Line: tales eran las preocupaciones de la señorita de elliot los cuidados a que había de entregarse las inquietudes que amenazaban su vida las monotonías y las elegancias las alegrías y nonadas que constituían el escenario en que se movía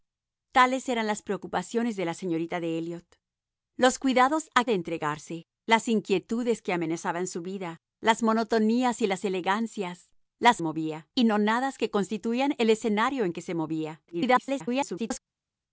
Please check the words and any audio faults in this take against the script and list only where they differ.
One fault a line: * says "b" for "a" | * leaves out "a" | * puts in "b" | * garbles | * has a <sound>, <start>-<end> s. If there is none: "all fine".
* leaves out "que había"
* says "movía" for "alegrías"
* garbles